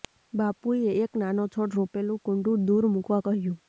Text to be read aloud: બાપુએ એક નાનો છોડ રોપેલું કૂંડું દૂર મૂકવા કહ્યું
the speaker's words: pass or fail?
pass